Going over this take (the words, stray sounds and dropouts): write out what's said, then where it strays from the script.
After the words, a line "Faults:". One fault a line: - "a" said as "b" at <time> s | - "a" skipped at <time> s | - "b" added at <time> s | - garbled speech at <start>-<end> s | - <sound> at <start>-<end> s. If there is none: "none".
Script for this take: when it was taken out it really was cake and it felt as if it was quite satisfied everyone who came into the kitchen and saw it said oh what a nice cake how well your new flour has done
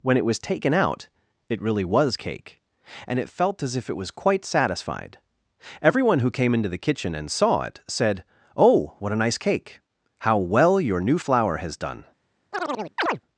when it was taken out it really was cake and it felt as if it was quite satisfied everyone who came into the kitchen and saw it said oh what a nice cake how well your new flour has done
Faults:
- chirp at 12.5-13.2 s